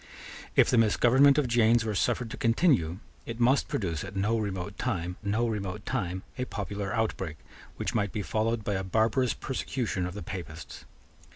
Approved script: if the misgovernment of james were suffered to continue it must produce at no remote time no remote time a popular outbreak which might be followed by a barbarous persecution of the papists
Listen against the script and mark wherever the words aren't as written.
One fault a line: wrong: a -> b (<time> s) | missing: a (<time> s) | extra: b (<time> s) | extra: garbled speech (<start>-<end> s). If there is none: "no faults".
no faults